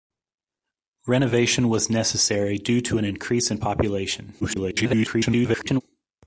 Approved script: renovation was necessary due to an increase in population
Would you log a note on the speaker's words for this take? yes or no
yes